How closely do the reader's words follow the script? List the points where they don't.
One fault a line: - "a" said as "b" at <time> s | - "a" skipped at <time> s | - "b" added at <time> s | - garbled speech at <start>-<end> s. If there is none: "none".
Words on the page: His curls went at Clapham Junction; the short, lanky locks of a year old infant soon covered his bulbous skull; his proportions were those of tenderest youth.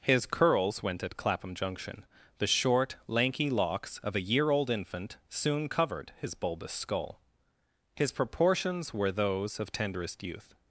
none